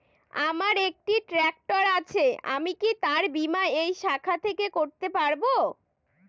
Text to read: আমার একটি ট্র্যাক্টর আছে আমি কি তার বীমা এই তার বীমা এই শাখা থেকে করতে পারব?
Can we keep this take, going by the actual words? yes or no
no